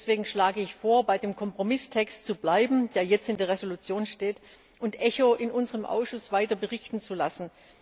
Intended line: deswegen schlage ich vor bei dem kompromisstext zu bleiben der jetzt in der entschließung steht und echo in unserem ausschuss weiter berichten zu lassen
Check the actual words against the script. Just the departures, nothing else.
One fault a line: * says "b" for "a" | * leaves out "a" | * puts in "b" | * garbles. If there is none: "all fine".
all fine